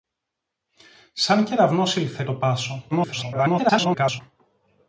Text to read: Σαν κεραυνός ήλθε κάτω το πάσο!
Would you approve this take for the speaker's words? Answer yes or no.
no